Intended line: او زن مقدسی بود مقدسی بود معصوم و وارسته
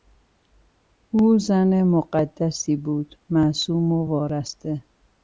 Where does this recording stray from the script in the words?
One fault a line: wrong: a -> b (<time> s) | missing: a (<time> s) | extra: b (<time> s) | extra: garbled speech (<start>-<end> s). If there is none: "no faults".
missing: مقدسی بود (3.1 s)